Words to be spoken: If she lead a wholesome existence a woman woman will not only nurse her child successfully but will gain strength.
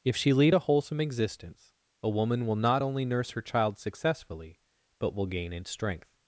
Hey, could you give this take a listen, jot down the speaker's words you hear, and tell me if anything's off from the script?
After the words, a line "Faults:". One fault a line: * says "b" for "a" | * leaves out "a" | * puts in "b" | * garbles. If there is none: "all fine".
If she lead a wholesome existence a woman will not only nurse her child successfully but will gain in strength.
Faults:
* leaves out "woman"
* puts in "in"